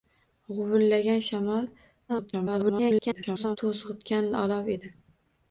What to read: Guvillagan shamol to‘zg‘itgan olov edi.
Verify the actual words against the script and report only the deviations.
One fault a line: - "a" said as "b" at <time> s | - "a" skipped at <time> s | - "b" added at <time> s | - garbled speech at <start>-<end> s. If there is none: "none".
- garbled speech at 2.1-3.6 s